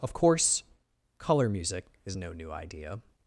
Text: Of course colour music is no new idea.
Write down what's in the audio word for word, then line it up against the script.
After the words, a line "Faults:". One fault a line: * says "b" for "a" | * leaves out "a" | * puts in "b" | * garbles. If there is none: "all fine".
Of course colour music is no new idea.
Faults:
all fine